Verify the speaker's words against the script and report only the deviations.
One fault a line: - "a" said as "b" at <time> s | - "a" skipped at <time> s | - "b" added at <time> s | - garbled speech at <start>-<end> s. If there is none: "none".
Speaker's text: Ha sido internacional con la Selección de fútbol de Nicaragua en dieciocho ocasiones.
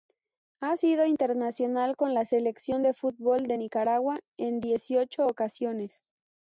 none